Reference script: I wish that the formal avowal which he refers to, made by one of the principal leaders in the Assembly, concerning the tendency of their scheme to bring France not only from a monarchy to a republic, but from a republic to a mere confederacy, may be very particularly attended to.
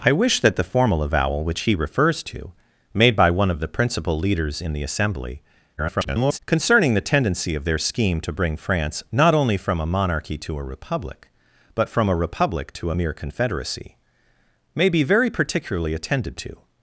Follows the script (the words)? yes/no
no